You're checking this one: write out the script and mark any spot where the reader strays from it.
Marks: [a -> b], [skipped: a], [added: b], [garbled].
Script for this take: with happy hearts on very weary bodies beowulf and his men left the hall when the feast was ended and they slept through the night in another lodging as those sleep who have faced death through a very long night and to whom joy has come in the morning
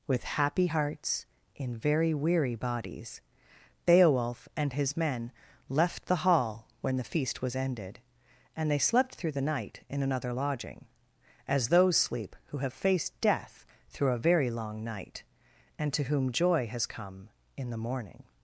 with happy hearts [on -> in] very weary bodies beowulf and his men left the hall when the feast was ended and they slept through the night in another lodging as those sleep who have faced death through a very long night and to whom joy has come in the morning